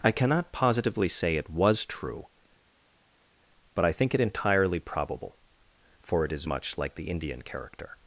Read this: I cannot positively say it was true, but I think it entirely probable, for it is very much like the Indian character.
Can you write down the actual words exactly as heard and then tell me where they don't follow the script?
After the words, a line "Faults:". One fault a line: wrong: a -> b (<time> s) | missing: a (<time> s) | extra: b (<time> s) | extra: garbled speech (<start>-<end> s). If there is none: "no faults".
I cannot positively say it was true, but I think it entirely probable, for it is much like the Indian character.
Faults:
missing: very (6.4 s)